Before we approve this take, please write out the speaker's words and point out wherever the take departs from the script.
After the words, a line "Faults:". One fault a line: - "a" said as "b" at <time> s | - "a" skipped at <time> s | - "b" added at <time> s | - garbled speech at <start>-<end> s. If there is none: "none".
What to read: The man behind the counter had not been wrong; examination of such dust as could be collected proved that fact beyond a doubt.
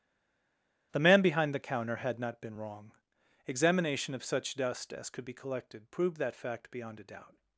The man behind the counter had not been wrong; examination of such dust as could be collected proved that fact beyond a doubt.
Faults:
none